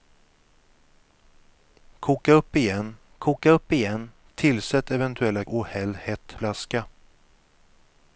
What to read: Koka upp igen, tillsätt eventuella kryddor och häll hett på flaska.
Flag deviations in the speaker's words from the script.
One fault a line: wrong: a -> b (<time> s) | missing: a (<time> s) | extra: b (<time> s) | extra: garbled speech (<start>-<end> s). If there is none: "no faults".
extra: koka upp igen (3.2 s)
missing: kryddor (5.4 s)
missing: på (6.3 s)